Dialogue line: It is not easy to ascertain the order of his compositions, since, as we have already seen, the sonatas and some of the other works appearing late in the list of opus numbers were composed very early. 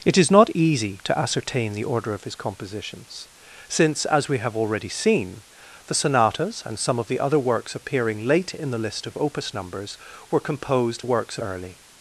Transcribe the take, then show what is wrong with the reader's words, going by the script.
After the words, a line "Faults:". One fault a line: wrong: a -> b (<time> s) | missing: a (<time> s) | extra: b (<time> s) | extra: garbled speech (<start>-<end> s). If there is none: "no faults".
It is not easy to ascertain the order of his compositions, since, as we have already seen, the sonatas and some of the other works appearing late in the list of opus numbers were composed works early.
Faults:
wrong: very -> works (11.0 s)